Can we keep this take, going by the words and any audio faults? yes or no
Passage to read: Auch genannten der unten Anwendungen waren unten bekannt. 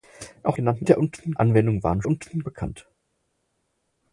yes